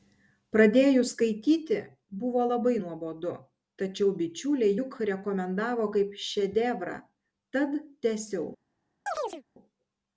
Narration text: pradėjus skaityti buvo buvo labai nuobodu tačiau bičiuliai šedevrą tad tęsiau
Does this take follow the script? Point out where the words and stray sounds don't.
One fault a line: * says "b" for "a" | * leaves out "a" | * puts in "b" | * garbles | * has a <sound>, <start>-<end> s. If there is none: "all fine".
* leaves out "buvo"
* puts in "juk rekomendavo kaip"
* has a chirp, 9.1-9.4 s